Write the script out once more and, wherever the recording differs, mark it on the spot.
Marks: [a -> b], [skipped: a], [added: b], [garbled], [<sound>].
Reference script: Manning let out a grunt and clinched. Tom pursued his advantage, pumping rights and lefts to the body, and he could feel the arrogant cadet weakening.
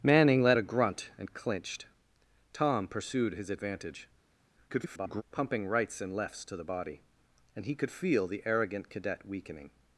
Manning let [skipped: out] a grunt and clinched. Tom pursued his advantage, [garbled] pumping rights and lefts to the body, and he could feel the arrogant cadet weakening.